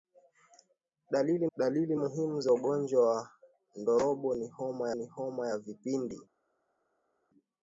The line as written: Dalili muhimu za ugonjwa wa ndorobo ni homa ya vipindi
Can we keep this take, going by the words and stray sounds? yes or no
no